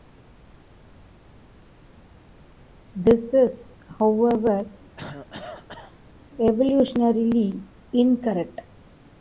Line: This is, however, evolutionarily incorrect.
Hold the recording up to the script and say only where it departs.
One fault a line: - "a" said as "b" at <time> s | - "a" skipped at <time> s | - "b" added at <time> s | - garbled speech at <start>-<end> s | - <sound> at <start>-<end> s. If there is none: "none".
- cough at 5.0-6.0 s